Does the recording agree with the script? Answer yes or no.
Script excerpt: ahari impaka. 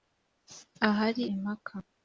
yes